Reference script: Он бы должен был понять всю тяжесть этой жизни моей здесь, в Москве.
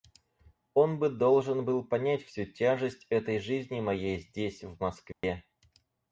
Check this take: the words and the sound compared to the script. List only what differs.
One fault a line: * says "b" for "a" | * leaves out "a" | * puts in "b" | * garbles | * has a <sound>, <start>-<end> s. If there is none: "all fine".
* has a dropout, 5.1-5.2 s